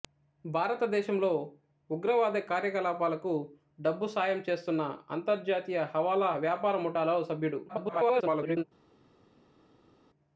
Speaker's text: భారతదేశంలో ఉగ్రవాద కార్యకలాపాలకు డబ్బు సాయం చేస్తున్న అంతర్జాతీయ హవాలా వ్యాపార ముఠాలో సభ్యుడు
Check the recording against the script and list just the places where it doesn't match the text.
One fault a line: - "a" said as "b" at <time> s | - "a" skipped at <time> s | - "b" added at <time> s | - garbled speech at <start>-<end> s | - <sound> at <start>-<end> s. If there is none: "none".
- garbled speech at 7.7-8.6 s